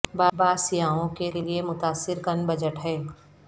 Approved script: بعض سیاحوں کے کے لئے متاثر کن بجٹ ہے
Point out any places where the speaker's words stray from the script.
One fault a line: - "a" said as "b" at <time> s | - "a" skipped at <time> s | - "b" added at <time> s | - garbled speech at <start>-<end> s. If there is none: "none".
none